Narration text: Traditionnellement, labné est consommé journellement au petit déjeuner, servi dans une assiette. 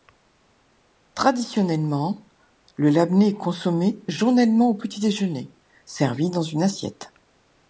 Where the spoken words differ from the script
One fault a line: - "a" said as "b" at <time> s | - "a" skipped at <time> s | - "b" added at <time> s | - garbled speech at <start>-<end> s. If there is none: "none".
- "le" added at 2.8 s